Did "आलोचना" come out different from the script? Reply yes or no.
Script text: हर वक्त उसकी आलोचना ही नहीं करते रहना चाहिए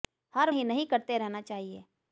yes